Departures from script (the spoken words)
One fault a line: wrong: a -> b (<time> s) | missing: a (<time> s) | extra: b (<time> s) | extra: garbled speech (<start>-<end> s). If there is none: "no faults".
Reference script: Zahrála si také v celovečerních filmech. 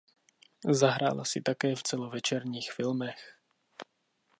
no faults